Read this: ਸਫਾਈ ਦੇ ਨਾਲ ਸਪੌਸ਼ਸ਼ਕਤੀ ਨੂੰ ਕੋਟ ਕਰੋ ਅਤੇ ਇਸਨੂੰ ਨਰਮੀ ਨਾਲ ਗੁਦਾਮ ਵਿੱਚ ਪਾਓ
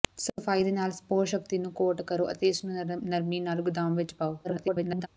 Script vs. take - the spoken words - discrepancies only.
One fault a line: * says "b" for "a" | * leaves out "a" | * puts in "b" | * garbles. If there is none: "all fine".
* garbles